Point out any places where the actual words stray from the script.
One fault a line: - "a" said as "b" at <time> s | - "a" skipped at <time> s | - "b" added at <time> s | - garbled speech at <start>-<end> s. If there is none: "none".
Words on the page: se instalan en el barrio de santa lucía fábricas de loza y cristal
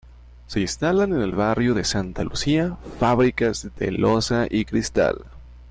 none